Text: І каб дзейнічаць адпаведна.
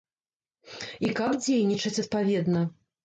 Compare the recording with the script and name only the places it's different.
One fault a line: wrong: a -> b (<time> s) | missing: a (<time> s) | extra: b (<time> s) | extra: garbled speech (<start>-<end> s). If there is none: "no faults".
no faults